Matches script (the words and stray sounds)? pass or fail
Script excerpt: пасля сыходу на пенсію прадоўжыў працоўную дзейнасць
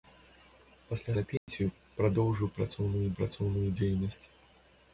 fail